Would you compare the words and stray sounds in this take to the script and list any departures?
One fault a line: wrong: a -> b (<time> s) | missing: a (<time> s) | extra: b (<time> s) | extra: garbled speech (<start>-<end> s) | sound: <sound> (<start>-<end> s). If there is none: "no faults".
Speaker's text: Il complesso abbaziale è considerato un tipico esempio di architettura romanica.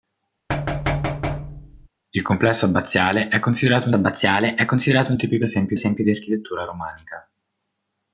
sound: thud (0.5-1.9 s)
extra: abbaziale è considerato (3.9 s)
extra: esempio (5.7 s)